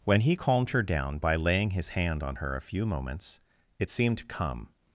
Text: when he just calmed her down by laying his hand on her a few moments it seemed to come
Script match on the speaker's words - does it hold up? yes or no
no